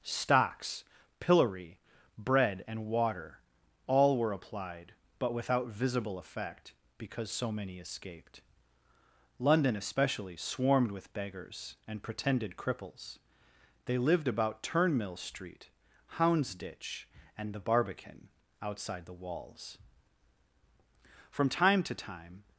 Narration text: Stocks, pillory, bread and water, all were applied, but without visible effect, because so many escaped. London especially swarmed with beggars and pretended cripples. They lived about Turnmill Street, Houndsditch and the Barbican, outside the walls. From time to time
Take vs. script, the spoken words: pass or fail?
pass